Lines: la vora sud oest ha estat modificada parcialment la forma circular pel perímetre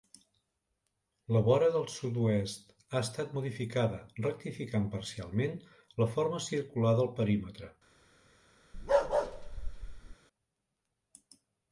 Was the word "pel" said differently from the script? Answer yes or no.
yes